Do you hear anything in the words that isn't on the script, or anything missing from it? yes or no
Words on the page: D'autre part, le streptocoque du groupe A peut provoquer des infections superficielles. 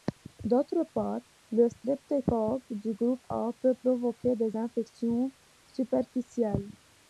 no